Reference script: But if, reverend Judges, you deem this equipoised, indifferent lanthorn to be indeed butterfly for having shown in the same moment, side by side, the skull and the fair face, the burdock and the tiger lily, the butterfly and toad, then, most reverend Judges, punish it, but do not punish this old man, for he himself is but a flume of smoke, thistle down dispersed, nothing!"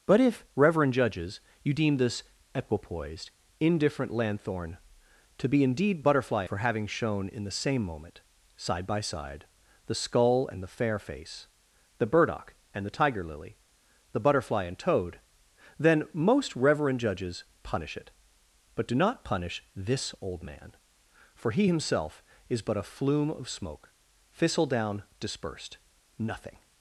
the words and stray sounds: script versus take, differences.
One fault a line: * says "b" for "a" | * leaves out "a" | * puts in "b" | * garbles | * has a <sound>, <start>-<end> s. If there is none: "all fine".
all fine